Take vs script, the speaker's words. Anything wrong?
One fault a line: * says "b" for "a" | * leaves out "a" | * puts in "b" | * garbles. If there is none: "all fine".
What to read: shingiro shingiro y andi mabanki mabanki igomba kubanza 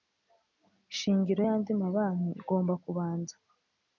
* leaves out "shingiro"
* leaves out "mabanki"